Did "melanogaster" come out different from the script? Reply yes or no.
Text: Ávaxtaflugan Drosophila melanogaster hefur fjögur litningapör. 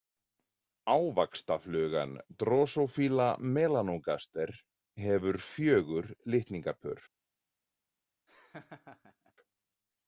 no